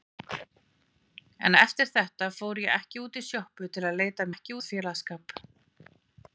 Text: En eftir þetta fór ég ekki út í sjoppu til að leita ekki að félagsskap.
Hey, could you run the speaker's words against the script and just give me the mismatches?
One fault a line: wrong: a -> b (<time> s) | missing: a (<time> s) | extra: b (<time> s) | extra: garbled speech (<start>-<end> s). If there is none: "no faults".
no faults